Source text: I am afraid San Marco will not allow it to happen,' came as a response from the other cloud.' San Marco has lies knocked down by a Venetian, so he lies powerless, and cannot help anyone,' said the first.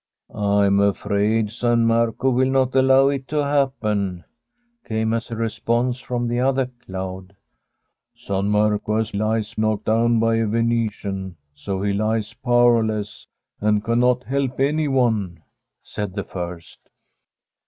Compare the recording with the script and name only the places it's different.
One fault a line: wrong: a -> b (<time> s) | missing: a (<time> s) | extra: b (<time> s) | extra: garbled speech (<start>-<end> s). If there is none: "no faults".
no faults